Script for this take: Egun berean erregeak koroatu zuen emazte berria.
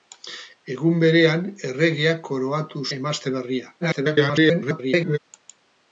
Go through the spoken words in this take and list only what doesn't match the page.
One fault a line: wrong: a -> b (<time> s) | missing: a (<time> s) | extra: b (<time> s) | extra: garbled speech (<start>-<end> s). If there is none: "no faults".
missing: zuen (2.8 s)
extra: garbled speech (3.8-5.2 s)